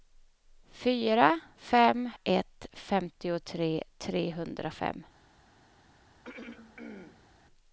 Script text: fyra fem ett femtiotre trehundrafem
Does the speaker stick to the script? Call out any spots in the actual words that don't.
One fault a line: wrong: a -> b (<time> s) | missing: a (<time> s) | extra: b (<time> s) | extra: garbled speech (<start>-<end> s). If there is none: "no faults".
no faults